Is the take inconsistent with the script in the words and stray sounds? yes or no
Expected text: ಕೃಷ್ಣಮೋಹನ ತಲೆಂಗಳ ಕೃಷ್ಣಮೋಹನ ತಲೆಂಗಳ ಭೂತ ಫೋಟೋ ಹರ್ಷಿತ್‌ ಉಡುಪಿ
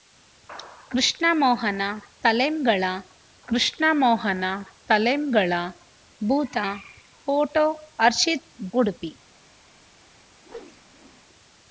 yes